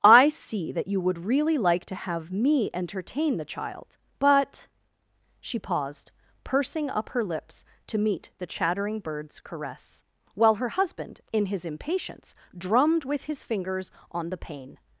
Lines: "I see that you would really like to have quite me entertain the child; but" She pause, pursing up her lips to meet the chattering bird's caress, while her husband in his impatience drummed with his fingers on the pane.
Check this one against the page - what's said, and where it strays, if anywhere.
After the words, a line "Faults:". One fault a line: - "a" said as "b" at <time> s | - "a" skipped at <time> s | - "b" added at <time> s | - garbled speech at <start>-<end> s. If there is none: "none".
"I see that you would really like to have me entertain the child; but" She paused, pursing up her lips to meet the chattering bird's caress, while her husband in his impatience drummed with his fingers on the pane.
Faults:
- "quite" skipped at 2.3 s
- "pause" said as "paused" at 5.6 s